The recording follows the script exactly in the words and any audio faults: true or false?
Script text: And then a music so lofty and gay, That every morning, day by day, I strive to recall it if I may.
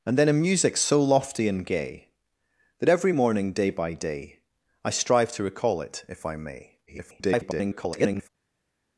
false